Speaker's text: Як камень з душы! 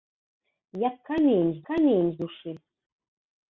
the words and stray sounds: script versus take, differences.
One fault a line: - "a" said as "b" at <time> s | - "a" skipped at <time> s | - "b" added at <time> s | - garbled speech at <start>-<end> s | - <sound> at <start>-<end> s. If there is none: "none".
- "камень з" added at 1.7 s